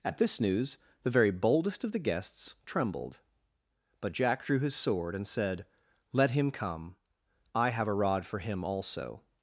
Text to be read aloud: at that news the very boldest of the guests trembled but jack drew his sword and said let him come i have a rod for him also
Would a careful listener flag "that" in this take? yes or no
yes